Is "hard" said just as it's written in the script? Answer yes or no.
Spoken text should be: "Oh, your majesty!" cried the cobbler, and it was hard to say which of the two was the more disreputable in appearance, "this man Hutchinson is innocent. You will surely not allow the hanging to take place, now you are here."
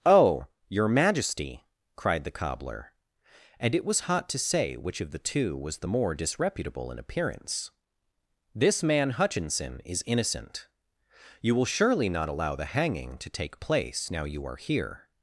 no